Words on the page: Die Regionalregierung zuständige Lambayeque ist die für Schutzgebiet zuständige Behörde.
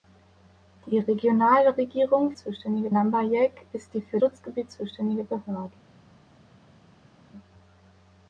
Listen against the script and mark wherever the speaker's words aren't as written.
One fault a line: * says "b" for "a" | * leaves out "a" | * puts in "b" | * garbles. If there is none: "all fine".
all fine